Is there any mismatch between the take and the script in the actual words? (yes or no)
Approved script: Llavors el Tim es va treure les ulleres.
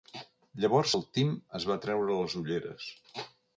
no